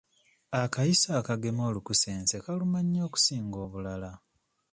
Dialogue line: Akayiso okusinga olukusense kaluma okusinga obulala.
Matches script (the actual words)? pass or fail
fail